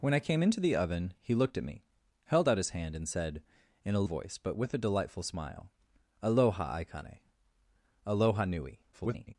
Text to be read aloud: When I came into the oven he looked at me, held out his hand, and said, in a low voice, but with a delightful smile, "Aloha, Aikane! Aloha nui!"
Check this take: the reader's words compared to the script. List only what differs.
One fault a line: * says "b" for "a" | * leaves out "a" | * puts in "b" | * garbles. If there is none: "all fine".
* leaves out "low"
* garbles